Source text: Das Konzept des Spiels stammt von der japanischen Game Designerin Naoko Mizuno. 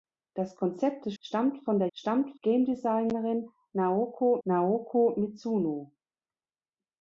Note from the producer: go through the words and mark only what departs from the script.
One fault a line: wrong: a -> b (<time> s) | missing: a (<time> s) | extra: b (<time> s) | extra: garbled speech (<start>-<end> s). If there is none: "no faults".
missing: Spiels (1.1 s)
wrong: japanischen -> stammt (1.9 s)
extra: Naoko (4.4 s)